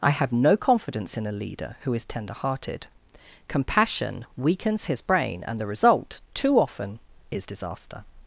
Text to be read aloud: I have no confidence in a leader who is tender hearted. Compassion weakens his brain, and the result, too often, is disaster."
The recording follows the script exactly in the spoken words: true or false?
true